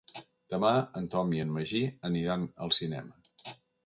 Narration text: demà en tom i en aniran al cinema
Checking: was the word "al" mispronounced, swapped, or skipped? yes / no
no